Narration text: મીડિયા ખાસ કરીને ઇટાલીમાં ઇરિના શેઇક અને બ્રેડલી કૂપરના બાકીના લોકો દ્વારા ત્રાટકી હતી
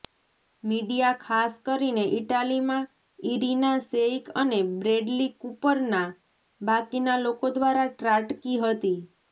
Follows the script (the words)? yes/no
yes